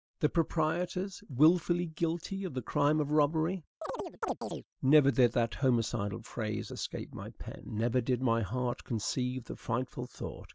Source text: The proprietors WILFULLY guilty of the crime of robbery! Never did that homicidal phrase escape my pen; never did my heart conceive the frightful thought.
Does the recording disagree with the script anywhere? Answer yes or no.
no